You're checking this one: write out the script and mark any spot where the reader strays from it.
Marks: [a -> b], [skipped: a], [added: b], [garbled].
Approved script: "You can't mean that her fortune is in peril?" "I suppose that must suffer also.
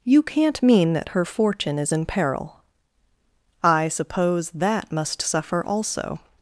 "You can't mean that her fortune is in peril?" "I suppose that must suffer also.